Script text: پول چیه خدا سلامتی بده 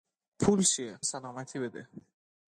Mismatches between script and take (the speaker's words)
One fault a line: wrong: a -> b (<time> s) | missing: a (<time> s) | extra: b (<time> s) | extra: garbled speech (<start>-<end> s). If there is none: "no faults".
missing: خدا (1.0 s)